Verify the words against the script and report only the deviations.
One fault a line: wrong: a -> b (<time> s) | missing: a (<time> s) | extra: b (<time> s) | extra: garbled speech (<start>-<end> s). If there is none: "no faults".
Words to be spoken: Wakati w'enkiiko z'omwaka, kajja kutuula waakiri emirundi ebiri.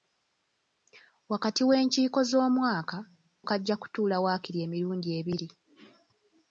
no faults